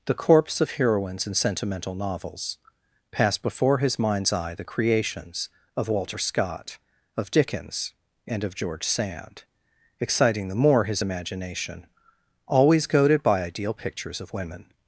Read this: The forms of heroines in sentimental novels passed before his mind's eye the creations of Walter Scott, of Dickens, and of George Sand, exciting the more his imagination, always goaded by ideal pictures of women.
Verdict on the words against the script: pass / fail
fail